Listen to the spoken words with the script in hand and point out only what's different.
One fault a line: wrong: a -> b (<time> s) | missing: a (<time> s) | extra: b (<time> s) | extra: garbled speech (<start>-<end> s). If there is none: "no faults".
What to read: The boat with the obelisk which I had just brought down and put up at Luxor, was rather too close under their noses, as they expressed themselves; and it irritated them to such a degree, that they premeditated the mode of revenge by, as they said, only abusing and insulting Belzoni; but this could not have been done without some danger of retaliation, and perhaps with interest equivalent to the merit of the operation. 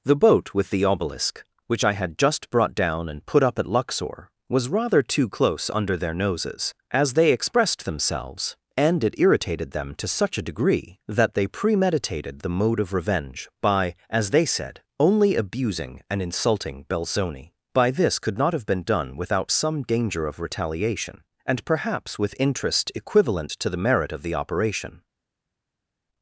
wrong: but -> by (17.7 s)